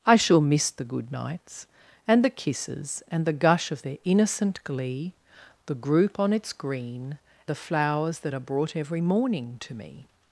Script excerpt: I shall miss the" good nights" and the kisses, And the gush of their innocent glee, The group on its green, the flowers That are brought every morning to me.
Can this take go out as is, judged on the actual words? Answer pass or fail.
pass